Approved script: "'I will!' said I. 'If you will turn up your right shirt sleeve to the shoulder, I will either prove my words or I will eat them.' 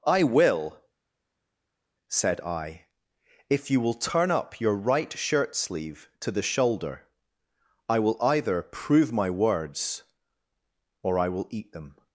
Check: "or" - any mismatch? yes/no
no